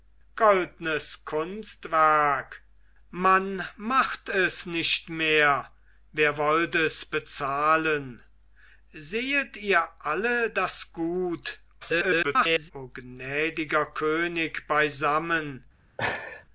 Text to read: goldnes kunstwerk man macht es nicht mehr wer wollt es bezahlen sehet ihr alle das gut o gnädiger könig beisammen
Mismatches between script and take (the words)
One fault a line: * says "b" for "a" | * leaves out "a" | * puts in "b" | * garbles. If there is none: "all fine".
* garbles